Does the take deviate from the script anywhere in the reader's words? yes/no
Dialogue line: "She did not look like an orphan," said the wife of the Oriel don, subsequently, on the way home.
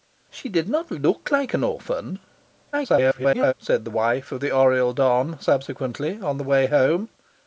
yes